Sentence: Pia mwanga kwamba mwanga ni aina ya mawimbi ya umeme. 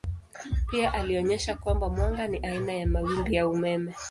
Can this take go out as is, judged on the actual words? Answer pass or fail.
fail